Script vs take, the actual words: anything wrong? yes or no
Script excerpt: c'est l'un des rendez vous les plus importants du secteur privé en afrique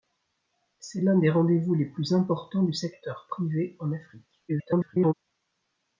yes